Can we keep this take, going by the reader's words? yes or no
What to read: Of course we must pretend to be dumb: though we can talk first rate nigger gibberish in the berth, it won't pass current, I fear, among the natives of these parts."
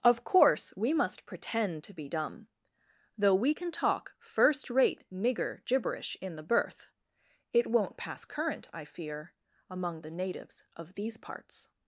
yes